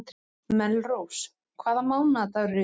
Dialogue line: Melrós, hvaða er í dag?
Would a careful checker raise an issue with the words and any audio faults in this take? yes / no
yes